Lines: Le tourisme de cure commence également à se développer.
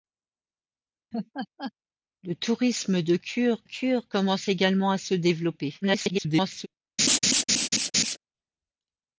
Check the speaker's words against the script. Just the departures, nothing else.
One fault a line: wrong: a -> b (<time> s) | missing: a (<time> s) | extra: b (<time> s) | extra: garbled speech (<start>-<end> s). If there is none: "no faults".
extra: cure (3.6 s)
extra: garbled speech (5.8-6.7 s)